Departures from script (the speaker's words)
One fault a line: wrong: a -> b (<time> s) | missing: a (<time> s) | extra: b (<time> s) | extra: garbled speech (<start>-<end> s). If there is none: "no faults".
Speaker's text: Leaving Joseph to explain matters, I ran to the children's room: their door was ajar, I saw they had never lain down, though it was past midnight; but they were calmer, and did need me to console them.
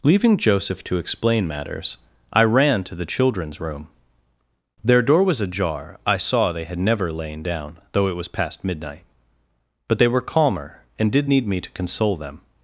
no faults